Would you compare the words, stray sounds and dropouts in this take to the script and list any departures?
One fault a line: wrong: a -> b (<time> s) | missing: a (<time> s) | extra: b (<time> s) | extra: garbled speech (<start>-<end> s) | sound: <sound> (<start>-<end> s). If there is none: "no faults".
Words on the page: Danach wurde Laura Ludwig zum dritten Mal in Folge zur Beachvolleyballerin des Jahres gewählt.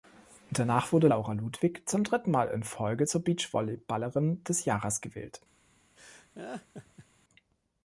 sound: laugh (6.0-7.1 s)